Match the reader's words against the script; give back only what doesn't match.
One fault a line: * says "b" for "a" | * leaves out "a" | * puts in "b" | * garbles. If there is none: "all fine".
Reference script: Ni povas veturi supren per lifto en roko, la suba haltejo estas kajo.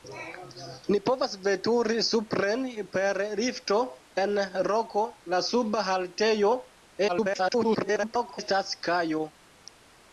* garbles